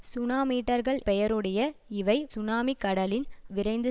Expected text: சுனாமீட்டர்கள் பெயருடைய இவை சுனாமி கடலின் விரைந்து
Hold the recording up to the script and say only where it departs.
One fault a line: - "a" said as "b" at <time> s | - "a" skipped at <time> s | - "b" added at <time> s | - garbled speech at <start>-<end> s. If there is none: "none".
none